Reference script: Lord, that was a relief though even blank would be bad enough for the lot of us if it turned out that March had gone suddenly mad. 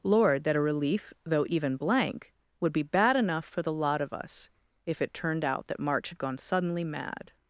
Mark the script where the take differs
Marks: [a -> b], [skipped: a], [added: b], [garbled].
Lord, that [skipped: was] a relief though even blank would be bad enough for the lot of us if it turned out that March had gone suddenly mad.